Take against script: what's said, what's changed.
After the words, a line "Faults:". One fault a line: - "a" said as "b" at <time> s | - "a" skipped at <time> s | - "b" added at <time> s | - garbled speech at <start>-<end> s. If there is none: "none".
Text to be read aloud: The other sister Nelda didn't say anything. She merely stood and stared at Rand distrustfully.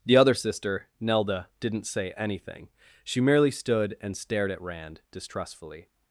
The other sister Nelda didn't say anything. She merely stood and stared at Rand distrustfully.
Faults:
none